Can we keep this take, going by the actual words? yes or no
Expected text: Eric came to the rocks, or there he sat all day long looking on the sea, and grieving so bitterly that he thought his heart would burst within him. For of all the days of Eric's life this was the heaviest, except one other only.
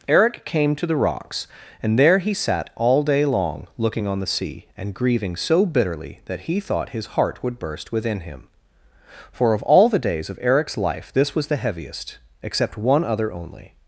no